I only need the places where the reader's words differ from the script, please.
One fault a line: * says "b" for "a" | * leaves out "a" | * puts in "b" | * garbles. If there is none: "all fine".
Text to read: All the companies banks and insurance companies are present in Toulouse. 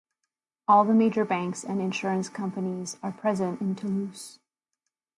* says "major" for "companies"